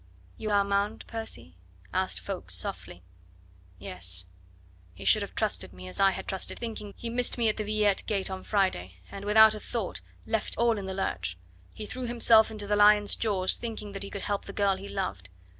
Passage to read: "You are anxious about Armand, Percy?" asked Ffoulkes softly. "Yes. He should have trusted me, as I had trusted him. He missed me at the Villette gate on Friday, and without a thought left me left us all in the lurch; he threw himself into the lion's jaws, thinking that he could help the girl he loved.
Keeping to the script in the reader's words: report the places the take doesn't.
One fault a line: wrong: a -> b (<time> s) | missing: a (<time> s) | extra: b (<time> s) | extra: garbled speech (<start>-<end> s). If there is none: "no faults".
missing: are anxious about (0.5 s)
wrong: him -> thinking (6.6 s)
missing: me left us (10.6 s)